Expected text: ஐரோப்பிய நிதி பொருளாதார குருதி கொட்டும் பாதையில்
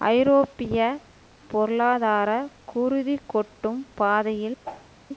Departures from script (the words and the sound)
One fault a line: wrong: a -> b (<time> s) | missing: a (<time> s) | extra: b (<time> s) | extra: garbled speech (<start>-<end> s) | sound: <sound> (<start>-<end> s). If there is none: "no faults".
missing: நிதி (0.8 s)
sound: whoosh (4.6-4.9 s)